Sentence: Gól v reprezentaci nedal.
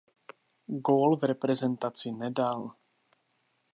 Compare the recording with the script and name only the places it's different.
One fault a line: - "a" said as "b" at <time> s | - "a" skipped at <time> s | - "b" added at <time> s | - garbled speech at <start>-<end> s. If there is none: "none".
none